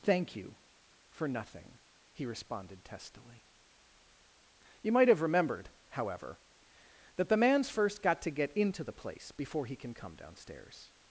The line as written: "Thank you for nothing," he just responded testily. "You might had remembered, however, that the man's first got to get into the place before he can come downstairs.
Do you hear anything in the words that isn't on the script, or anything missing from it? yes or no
yes